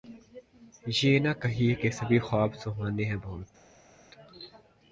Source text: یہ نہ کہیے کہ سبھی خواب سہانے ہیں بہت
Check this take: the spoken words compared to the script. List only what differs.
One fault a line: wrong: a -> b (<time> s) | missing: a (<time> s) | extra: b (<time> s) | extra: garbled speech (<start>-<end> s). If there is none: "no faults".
no faults